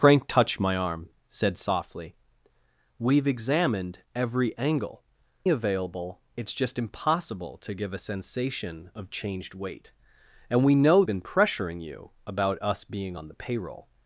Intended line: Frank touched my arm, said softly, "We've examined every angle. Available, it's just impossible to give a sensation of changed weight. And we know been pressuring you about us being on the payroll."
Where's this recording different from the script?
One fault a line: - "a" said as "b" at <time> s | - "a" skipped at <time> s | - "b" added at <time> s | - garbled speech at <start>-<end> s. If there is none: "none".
none